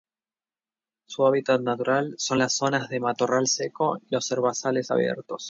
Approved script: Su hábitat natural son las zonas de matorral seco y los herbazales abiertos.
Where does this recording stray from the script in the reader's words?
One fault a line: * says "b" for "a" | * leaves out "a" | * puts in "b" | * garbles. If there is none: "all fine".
all fine